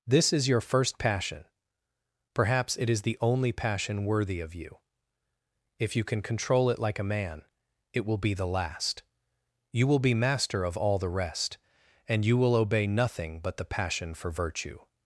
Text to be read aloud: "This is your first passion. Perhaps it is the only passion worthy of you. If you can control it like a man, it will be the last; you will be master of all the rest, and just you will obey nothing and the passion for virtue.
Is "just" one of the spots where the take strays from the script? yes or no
yes